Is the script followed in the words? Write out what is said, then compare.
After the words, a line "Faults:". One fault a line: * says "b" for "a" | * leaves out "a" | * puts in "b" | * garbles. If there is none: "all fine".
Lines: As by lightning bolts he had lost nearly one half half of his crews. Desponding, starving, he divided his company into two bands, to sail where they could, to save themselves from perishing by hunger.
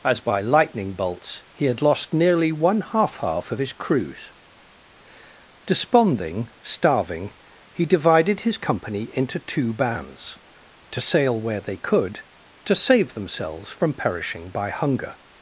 As by lightning bolts he had lost nearly one half half of his crews. Desponding, starving, he divided his company into two bands, to sail where they could, to save themselves from perishing by hunger.
Faults:
all fine